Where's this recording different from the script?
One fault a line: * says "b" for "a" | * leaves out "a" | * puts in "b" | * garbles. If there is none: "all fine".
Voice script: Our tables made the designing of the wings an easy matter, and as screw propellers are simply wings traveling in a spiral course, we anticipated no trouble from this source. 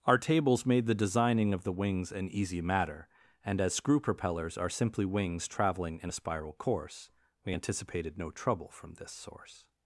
all fine